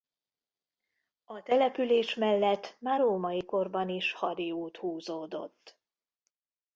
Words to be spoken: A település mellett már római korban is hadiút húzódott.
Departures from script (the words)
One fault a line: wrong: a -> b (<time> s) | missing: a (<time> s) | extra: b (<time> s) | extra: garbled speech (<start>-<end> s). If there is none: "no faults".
no faults